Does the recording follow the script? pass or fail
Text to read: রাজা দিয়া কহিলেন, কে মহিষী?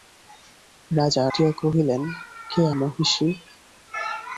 pass